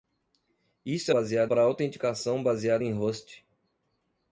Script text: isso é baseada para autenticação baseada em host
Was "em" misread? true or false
false